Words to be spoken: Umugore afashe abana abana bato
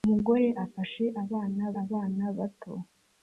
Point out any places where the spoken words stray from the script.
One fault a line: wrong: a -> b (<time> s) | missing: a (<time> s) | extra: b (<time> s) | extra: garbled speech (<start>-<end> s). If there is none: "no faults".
no faults